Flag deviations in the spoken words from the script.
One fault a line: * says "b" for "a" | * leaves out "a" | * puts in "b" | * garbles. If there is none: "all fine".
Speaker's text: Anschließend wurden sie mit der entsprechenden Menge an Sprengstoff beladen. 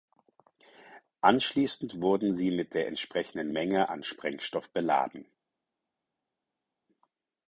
all fine